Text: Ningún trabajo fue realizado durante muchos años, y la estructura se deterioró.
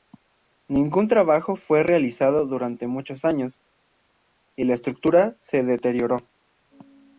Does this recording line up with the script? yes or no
yes